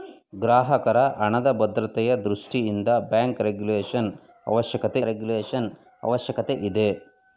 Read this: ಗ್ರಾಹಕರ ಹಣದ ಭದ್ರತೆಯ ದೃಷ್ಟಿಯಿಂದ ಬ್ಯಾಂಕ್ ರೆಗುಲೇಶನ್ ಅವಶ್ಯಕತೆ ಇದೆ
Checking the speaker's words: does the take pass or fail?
fail